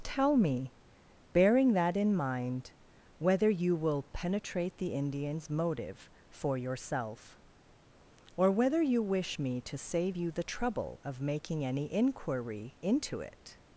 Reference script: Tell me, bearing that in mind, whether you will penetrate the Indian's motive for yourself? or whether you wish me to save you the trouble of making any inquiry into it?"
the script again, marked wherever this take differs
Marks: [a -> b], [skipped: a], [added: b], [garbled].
Tell me, bearing that in mind, whether you will penetrate the Indian's motive for yourself? or whether you wish me to save you the trouble of making any inquiry into it?"